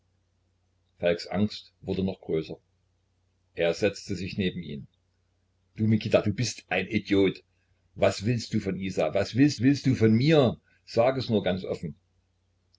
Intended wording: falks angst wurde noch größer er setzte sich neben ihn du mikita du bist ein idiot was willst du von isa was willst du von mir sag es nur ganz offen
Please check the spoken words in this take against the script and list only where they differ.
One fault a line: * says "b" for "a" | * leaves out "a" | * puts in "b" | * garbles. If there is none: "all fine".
* puts in "willst"